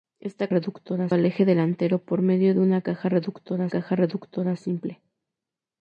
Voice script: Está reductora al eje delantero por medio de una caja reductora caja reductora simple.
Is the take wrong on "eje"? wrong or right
right